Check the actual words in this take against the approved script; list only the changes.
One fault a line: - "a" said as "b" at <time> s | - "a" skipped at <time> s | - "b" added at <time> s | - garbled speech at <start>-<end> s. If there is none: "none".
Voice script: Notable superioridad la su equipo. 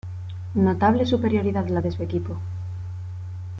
- "de" added at 1.8 s